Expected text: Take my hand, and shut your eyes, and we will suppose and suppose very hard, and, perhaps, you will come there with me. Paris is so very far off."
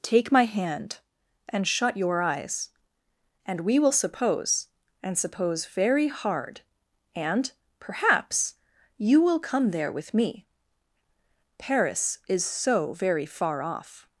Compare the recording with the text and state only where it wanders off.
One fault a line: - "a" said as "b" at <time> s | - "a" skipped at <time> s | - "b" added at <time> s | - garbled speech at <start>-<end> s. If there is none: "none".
none